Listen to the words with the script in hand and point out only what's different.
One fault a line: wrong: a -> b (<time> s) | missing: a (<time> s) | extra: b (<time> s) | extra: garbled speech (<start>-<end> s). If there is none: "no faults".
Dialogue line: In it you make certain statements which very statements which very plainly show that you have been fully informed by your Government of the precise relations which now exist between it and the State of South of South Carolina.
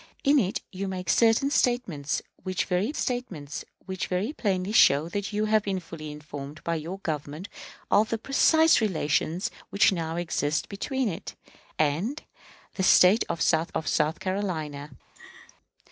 no faults